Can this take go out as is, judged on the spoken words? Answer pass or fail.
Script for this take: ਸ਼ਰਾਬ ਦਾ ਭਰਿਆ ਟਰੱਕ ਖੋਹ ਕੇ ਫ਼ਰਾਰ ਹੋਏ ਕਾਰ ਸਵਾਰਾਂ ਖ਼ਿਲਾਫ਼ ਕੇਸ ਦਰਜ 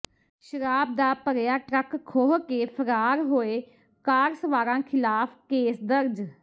pass